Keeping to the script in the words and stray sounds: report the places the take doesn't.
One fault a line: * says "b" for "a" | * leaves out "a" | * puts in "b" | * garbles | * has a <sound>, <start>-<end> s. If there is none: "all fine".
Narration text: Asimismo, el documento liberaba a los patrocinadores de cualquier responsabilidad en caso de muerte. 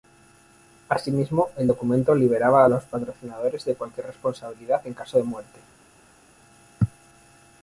all fine